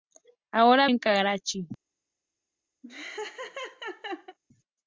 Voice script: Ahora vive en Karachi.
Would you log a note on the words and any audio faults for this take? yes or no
yes